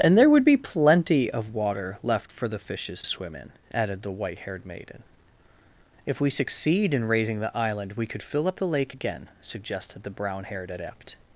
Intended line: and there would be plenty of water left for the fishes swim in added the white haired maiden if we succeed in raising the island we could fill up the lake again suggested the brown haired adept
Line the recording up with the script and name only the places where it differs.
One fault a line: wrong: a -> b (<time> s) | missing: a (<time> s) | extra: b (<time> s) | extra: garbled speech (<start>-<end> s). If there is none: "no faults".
no faults